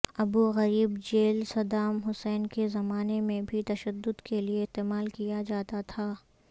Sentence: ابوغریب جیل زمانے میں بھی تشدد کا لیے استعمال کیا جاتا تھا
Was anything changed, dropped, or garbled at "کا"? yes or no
yes